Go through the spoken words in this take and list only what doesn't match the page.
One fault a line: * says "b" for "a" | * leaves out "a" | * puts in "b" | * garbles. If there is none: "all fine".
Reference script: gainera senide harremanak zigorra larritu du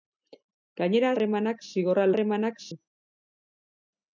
* leaves out "senide"
* says "harremanak" for "larritu"